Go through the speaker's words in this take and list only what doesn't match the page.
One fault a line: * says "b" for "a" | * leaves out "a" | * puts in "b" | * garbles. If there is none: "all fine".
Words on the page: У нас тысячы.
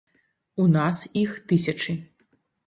* puts in "іх"